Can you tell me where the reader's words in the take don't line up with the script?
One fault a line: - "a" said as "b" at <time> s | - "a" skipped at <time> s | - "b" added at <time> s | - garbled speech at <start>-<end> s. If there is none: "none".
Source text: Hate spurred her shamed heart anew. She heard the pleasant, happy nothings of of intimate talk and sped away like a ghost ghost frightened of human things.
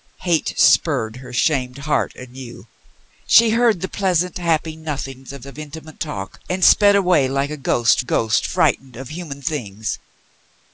none